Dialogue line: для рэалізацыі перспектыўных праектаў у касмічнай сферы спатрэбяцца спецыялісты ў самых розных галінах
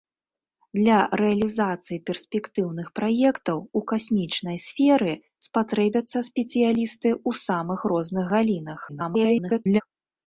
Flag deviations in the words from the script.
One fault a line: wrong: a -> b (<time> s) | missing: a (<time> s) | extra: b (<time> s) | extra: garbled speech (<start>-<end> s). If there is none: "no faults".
extra: garbled speech (8.9-9.8 s)